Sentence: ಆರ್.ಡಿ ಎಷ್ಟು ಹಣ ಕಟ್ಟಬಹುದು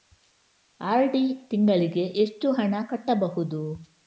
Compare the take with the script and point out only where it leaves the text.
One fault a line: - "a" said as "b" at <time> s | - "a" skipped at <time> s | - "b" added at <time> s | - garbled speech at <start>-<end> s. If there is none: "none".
- "ತಿಂಗಳಿಗೆ" added at 1.5 s